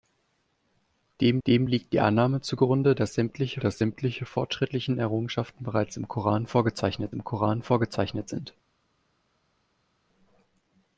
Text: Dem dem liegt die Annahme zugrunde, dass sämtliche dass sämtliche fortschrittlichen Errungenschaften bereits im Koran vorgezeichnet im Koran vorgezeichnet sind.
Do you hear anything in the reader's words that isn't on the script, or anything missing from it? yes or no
no